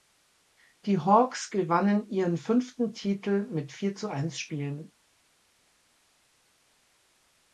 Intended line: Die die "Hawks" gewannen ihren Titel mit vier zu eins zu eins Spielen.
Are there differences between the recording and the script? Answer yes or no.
yes